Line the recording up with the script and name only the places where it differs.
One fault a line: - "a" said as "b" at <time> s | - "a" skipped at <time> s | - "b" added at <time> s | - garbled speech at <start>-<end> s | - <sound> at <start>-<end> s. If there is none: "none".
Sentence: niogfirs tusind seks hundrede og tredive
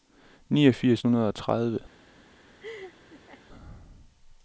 - "tusind seks" skipped at 1.0 s
- laugh at 2.6-3.4 s